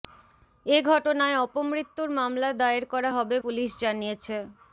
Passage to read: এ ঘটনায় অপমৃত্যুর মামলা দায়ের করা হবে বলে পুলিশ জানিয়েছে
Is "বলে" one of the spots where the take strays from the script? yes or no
yes